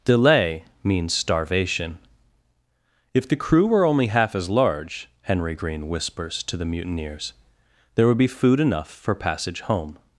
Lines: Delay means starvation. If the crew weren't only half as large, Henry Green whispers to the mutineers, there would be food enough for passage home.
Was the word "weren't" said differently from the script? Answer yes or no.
yes